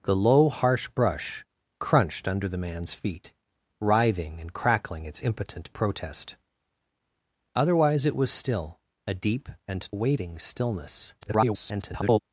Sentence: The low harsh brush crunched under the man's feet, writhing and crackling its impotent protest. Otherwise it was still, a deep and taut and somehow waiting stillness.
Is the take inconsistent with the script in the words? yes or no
yes